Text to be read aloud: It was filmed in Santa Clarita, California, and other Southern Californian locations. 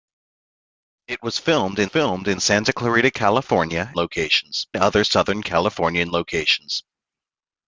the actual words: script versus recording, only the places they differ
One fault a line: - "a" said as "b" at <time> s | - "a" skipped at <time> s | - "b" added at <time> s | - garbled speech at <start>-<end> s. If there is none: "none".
- "filmed in" added at 1.8 s
- "and" said as "locations" at 3.9 s